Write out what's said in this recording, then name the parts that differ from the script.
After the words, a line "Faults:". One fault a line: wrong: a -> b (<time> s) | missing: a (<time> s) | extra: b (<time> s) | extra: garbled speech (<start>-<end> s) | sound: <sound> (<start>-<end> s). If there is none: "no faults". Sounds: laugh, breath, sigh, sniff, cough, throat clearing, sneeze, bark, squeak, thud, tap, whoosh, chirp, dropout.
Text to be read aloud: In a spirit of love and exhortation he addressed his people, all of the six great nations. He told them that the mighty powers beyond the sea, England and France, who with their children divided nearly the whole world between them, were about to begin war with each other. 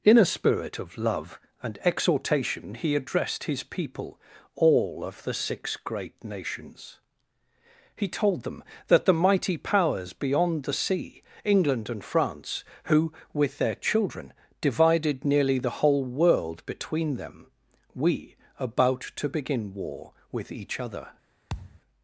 In a spirit of love and exhortation he addressed his people, all of the six great nations. He told them that the mighty powers beyond the sea, England and France, who with their children divided nearly the whole world between them, we about to begin war with each other.
Faults:
wrong: were -> we (17.9 s)
sound: thud (21.5-21.8 s)